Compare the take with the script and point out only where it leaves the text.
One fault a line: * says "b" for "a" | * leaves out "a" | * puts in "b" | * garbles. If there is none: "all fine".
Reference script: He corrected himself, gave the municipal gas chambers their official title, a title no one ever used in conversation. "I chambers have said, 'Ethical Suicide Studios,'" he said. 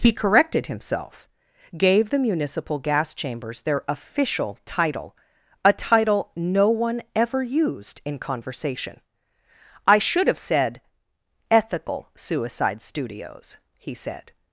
* says "should" for "chambers"